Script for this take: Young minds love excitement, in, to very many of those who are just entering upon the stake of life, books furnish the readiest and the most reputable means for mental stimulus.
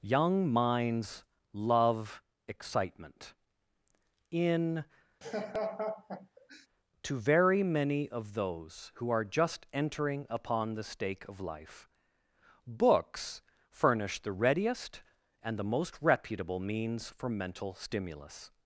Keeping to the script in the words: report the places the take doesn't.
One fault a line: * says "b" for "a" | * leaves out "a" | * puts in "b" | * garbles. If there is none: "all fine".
all fine